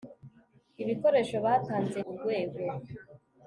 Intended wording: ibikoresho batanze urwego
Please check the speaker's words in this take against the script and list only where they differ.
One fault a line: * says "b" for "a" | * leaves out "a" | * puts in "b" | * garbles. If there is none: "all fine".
all fine